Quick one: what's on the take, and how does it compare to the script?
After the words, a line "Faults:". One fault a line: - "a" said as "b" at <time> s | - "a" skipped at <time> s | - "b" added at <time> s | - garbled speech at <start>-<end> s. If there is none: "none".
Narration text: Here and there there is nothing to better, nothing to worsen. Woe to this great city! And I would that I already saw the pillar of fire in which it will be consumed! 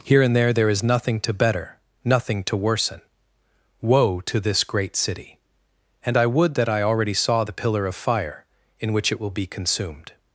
Here and there there is nothing to better, nothing to worsen. Woe to this great city! And I would that I already saw the pillar of fire in which it will be consumed!
Faults:
none